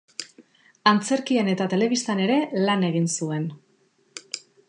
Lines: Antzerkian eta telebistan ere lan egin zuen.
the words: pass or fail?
pass